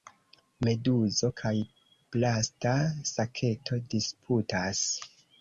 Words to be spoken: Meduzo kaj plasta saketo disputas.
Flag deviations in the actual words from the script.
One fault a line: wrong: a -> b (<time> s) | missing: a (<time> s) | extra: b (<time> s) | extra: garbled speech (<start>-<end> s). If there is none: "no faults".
no faults